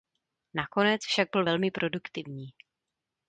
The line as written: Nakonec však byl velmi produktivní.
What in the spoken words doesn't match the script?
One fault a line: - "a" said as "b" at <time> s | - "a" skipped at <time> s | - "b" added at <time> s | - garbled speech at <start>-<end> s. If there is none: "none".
none